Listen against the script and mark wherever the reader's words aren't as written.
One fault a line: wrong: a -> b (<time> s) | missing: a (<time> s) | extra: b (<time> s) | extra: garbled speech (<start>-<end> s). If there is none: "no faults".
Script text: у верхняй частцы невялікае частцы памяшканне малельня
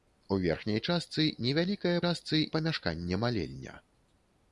no faults